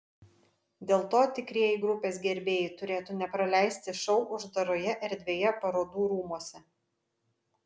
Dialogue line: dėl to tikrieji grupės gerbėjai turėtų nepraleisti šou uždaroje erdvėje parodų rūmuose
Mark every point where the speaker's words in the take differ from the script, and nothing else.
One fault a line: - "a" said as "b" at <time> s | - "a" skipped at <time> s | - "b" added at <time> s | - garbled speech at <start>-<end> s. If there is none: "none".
none